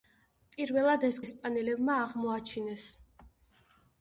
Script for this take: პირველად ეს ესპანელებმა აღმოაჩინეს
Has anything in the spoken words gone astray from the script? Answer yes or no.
no